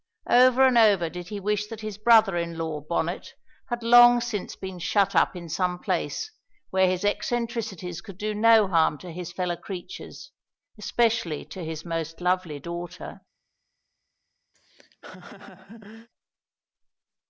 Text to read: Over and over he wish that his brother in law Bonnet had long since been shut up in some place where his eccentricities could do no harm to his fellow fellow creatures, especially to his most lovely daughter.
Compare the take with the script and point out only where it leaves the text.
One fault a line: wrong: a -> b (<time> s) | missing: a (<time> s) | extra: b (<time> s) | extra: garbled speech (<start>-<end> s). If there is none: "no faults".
extra: did (1.1 s)
missing: fellow (9.6 s)